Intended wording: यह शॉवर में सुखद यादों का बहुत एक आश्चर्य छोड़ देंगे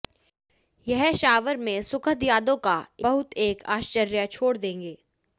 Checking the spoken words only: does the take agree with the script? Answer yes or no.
yes